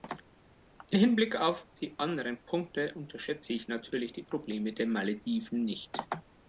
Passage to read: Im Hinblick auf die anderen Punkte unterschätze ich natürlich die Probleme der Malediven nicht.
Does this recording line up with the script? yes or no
yes